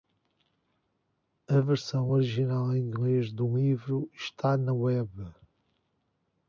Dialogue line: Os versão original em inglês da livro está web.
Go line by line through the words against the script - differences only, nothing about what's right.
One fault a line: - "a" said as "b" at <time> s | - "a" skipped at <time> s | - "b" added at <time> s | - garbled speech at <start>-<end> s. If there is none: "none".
- "Os" said as "A" at 1.5 s
- "da" said as "do" at 3.3 s
- "na" added at 4.6 s